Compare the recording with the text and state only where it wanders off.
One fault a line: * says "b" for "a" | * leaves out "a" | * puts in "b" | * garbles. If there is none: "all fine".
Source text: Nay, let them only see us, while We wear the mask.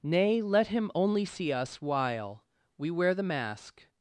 * says "him" for "them"